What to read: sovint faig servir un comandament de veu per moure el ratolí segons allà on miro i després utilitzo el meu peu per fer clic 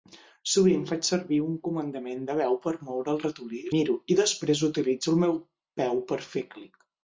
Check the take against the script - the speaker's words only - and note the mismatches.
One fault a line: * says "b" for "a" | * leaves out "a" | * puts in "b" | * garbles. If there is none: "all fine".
* leaves out "segons allà on"